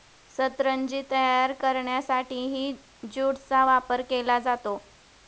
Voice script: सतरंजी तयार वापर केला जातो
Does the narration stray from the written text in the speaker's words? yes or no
yes